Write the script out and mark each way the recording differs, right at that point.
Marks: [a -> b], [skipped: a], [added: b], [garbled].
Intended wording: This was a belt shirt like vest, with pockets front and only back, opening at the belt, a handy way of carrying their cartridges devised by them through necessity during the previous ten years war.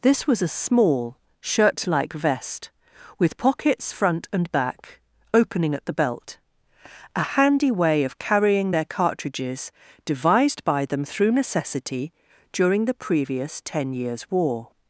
This was a [belt -> small] shirt like vest, with pockets front and [skipped: only] back, opening at the belt, a handy way of carrying their cartridges devised by them through necessity during the previous ten years war.